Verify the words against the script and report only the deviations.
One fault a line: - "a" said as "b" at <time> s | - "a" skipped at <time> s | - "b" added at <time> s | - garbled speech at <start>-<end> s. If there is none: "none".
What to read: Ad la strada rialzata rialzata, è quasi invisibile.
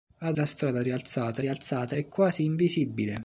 none